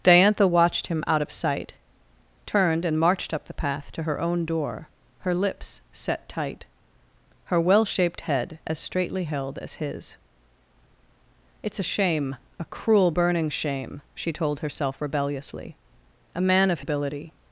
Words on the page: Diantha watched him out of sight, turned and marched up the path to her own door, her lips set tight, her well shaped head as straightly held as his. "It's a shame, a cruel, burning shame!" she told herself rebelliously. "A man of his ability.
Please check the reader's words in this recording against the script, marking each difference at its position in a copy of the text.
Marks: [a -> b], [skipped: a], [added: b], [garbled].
Diantha watched him out of sight, turned and marched up the path to her own door, her lips set tight, her well shaped head as straightly held as his. "It's a shame, a cruel, burning shame!" she told herself rebelliously. "A man of [skipped: his] ability.